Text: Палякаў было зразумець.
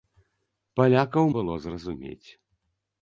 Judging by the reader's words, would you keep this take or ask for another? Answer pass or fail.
pass